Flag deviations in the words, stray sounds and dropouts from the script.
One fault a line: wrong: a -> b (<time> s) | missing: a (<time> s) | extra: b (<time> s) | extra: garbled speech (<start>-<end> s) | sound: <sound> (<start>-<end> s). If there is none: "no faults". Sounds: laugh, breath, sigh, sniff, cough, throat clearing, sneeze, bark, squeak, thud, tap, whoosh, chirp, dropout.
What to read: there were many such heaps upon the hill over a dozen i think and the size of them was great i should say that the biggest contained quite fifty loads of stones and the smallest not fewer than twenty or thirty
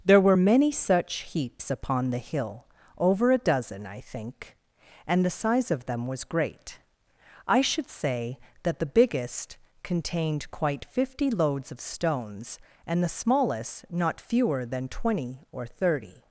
no faults